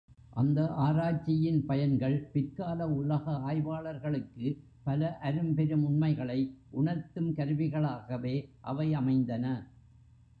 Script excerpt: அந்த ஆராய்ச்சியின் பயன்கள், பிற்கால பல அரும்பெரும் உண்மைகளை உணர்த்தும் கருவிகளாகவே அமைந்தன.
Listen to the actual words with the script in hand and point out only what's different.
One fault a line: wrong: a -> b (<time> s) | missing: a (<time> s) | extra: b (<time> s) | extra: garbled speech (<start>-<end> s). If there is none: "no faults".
extra: உலக ஆய்வாளர்களுக்கு (2.9 s)
extra: அவை (8.6 s)